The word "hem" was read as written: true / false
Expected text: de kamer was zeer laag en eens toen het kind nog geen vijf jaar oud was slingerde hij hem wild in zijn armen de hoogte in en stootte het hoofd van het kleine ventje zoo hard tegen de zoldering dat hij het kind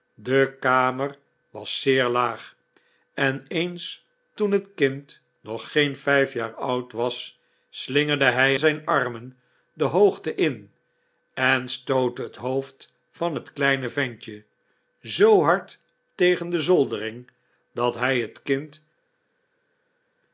false